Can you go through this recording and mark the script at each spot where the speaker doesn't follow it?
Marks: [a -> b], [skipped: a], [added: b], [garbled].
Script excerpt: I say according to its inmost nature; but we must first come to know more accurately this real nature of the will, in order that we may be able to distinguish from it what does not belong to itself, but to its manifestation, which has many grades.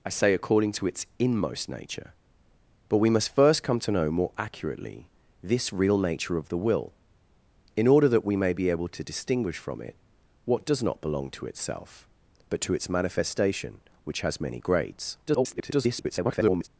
I say according to its inmost nature; but we must first come to know more accurately this real nature of the will, in order that we may be able to distinguish from it what does not belong to itself, but to its manifestation, which has many grades. [garbled]